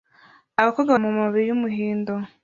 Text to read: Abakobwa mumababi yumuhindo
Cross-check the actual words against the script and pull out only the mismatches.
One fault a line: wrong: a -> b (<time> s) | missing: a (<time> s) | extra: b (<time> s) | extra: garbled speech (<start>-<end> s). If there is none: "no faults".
no faults